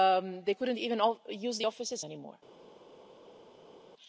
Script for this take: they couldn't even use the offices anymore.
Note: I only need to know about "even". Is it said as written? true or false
true